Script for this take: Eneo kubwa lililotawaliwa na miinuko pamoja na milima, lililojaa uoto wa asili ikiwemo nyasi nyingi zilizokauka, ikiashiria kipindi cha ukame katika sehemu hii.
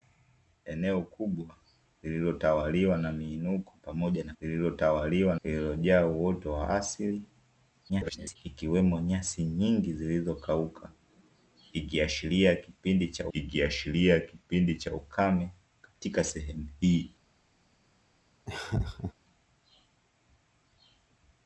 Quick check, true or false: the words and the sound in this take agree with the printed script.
false